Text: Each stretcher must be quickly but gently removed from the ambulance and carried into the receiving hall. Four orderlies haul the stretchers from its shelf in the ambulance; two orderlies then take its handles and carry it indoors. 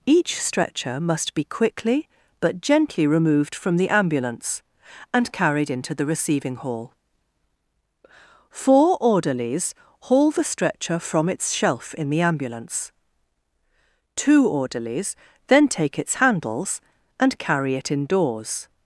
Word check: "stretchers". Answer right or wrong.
wrong